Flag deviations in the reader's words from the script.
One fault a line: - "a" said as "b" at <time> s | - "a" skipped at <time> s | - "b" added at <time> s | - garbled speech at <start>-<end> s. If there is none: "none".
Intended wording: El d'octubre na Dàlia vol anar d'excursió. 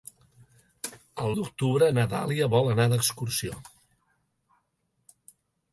none